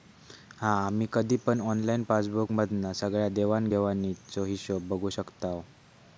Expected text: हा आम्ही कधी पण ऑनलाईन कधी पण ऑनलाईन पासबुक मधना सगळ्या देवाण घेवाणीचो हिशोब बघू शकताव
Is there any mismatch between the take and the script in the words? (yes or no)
yes